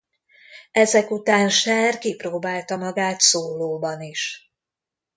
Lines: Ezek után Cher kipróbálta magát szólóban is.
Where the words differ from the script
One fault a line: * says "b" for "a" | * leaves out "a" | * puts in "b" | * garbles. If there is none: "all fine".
all fine